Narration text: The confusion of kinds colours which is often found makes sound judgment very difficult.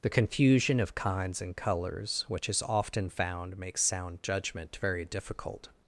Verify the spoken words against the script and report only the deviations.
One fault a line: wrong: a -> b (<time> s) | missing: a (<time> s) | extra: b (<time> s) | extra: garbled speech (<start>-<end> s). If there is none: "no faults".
extra: and (1.4 s)